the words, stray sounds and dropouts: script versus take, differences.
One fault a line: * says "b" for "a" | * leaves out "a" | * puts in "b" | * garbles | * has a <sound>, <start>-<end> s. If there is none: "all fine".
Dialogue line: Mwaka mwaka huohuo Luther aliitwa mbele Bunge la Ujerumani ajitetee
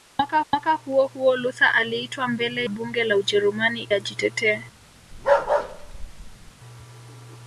* has a bark, 5.1-6.5 s